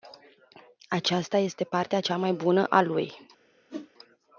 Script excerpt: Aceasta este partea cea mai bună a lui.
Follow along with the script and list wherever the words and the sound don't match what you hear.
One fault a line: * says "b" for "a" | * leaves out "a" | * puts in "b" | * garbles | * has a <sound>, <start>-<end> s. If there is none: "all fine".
* has a whoosh, 3.7-3.9 s